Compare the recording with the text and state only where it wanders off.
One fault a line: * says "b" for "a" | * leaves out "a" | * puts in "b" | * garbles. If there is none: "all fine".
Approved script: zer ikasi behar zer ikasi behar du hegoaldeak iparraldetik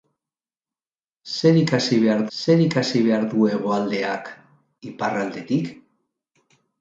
all fine